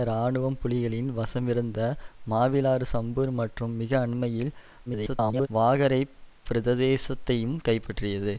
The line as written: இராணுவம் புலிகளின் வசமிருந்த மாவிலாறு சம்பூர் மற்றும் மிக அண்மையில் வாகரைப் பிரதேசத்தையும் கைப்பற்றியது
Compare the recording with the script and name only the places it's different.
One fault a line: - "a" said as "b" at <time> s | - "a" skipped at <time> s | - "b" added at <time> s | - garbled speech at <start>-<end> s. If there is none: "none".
- garbled speech at 4.9-5.5 s